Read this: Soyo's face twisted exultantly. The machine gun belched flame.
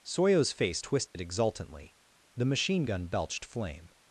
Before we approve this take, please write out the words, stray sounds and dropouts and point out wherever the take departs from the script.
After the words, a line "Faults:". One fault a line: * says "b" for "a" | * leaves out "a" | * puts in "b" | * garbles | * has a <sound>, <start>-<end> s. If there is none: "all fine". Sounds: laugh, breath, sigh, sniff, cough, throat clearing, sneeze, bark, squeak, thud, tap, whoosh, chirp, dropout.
Soyo's face twisted exultantly. The machine gun belched flame.
Faults:
* has a dropout, 1.1-1.2 s